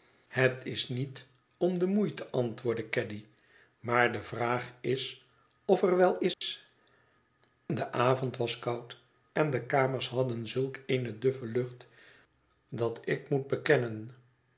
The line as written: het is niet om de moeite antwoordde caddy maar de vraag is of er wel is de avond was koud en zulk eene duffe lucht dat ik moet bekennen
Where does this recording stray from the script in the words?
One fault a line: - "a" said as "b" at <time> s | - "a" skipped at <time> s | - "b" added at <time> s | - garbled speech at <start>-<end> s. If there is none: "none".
- "de kamers hadden" added at 9.5 s